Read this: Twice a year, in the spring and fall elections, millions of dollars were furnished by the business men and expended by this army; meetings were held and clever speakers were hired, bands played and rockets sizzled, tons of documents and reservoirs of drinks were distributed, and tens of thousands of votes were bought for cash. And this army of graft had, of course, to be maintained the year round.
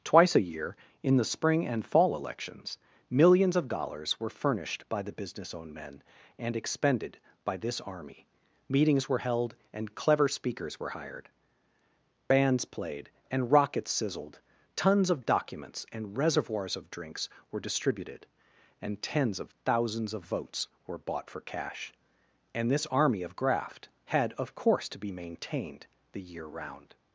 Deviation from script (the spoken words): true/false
true